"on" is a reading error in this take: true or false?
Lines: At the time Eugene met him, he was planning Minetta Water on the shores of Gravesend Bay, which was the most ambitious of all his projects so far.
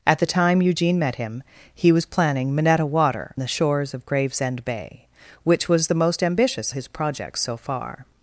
true